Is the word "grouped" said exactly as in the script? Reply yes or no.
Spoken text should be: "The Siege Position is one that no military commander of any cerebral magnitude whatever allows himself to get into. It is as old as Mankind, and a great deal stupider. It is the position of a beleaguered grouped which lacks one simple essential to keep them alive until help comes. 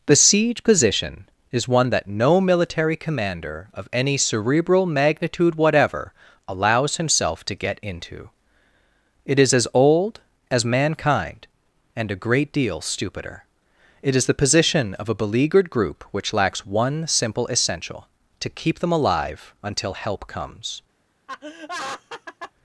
no